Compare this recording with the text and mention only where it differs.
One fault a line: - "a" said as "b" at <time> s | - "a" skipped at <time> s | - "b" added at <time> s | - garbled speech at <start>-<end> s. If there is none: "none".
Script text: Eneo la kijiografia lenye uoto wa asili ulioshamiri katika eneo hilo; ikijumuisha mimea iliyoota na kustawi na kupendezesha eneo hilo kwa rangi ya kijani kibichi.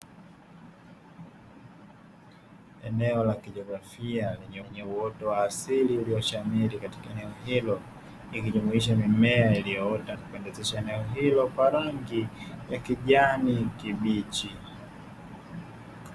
- "lenye" added at 4.6 s
- "na kustawi na" skipped at 10.2 s